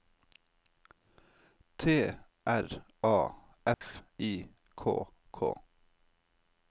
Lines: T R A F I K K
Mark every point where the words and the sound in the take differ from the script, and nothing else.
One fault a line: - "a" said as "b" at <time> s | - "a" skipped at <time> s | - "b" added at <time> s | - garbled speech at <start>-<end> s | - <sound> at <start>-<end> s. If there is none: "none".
- dropout at 3.7-3.8 s